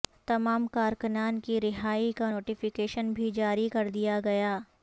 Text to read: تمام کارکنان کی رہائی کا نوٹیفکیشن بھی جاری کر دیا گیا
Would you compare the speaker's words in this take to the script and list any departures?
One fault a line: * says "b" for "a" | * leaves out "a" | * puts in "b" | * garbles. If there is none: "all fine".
all fine